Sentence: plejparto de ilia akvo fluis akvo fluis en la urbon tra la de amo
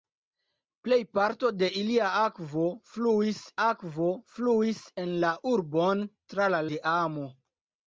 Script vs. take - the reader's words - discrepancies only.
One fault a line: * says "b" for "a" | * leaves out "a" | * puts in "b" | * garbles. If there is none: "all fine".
all fine